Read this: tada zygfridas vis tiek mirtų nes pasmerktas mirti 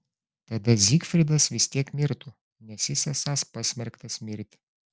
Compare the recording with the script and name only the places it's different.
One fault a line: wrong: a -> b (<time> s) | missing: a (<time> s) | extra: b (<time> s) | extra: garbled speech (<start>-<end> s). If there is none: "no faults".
extra: jis esąs (2.9 s)